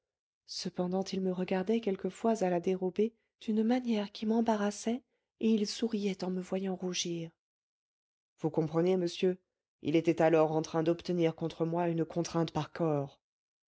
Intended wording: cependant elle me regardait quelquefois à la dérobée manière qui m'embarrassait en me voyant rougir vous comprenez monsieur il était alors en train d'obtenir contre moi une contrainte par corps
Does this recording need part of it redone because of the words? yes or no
yes